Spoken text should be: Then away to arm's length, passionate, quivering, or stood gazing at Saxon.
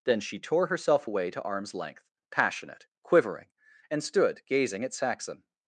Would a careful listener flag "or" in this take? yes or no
yes